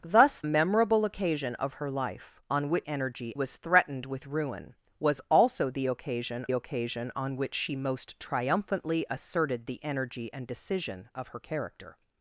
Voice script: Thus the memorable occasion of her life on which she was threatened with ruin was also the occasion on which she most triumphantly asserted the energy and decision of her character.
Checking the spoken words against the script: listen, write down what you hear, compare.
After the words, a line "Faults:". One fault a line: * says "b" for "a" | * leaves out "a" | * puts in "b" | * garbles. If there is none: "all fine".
Thus memorable occasion of her life on which energy was threatened with ruin was also the occasion occasion on which she most triumphantly asserted the energy and decision of her character.
Faults:
* leaves out "the"
* says "energy" for "she"
* puts in "occasion"